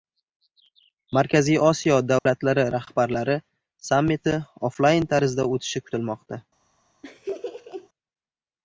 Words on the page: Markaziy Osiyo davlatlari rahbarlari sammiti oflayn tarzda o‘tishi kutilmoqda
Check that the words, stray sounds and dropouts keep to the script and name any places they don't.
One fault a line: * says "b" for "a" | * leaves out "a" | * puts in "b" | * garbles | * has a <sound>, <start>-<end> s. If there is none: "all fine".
* has a dropout, 2.2-2.3 s
* has a laugh, 7.0-7.9 s